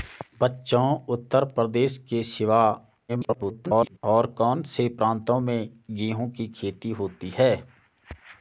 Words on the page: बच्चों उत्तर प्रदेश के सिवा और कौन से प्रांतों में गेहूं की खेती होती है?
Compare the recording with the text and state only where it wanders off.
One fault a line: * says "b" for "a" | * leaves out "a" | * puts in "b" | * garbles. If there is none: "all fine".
* garbles